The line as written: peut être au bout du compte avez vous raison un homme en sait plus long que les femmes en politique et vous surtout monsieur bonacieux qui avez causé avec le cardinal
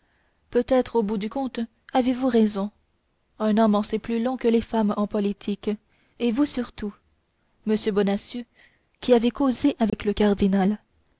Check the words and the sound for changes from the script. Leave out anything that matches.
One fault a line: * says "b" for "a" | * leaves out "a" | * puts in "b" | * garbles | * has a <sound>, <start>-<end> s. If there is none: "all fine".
* has a dropout, 9.9-9.9 s